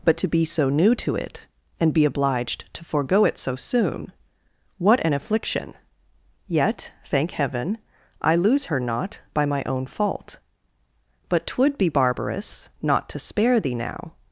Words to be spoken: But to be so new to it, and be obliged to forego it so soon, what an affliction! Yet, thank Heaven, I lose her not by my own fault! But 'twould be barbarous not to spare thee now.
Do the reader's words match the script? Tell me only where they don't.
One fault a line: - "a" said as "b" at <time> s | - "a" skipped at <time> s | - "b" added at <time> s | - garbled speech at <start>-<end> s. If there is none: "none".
none